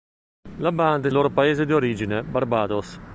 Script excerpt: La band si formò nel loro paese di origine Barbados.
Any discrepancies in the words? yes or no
yes